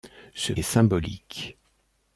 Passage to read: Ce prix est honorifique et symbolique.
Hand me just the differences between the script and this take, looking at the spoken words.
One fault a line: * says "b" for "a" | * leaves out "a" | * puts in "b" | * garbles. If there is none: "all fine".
* leaves out "prix est honorifique"